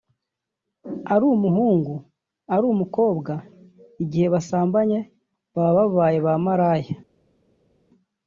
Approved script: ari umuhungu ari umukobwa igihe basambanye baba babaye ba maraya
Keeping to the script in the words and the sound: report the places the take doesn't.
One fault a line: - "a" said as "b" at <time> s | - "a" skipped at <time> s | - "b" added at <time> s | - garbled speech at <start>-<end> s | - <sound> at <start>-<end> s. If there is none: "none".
none